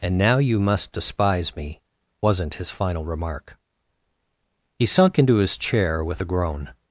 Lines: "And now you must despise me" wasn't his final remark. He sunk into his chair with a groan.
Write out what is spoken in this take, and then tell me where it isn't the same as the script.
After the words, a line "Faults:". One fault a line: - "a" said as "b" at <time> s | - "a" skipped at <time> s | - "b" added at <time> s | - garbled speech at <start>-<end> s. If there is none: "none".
"And now you must despise me" wasn't his final remark. He sunk into his chair with a groan.
Faults:
none